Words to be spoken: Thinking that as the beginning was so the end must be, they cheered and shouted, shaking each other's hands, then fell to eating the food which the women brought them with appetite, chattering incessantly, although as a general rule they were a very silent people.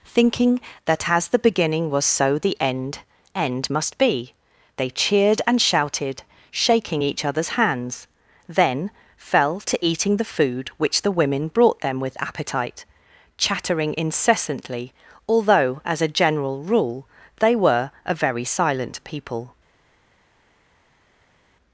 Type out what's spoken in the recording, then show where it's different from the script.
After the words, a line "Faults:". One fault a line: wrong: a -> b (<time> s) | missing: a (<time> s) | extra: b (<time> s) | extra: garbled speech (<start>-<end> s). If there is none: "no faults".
Thinking that as the beginning was so the end end must be, they cheered and shouted, shaking each other's hands, then fell to eating the food which the women brought them with appetite, chattering incessantly, although as a general rule they were a very silent people.
Faults:
extra: end (3.4 s)